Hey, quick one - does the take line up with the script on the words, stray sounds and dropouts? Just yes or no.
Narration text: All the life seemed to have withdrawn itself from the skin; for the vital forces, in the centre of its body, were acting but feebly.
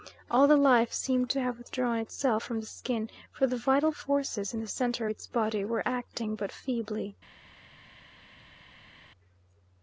yes